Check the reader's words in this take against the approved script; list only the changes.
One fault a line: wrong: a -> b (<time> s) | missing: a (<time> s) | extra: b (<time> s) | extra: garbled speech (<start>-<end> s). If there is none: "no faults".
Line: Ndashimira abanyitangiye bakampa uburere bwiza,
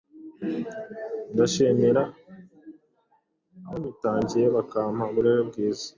no faults